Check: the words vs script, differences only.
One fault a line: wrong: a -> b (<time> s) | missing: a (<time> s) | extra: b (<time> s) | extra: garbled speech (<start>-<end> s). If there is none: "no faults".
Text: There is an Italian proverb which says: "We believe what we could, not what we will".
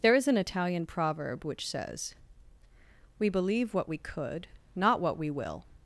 no faults